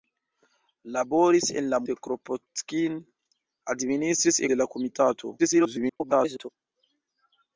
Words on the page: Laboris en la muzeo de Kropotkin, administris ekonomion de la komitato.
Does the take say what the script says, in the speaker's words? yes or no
no